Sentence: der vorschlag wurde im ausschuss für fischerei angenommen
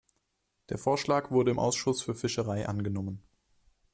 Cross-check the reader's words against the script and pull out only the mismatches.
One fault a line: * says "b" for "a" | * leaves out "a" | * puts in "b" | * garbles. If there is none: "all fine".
all fine